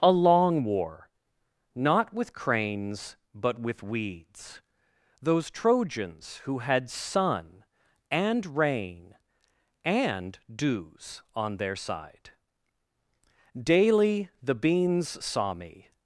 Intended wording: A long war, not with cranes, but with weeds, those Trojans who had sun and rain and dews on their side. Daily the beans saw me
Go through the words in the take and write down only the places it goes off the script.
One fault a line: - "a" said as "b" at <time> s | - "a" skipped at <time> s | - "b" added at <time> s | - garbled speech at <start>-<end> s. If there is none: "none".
none